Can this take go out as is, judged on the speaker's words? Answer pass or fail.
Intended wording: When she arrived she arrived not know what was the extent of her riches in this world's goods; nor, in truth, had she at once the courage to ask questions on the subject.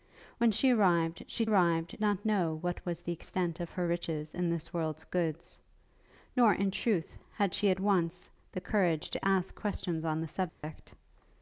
pass